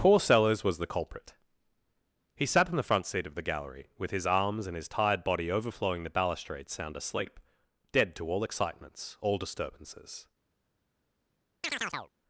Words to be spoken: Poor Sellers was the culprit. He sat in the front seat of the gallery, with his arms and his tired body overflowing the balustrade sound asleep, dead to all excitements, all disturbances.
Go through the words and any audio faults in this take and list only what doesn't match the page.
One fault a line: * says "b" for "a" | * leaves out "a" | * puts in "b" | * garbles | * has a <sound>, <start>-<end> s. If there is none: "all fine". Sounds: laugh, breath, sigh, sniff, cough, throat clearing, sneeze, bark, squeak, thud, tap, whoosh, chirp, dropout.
* has a chirp, 11.6-12.1 s